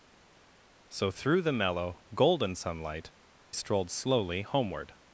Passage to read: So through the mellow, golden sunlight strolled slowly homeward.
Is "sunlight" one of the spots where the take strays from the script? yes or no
no